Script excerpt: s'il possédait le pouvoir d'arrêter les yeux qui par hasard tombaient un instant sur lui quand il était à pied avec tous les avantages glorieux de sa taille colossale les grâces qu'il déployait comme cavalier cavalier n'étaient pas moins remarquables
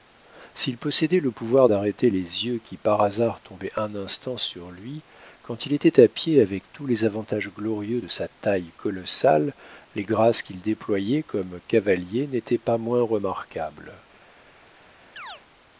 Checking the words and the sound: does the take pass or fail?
fail